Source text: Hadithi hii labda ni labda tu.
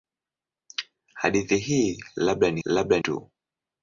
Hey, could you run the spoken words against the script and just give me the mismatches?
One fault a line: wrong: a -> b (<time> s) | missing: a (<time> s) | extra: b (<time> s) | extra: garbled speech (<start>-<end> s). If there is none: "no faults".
no faults